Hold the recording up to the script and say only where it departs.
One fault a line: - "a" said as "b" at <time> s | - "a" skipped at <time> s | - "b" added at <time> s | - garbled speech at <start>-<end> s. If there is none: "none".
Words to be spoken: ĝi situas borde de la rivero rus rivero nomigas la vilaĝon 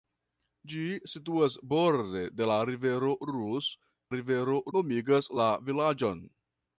none